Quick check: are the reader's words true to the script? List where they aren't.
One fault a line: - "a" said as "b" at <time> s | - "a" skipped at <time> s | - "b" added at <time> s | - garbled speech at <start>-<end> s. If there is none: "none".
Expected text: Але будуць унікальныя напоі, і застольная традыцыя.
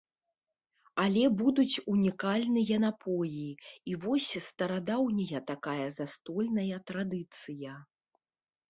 - "вось старадаўняя такая" added at 4.0 s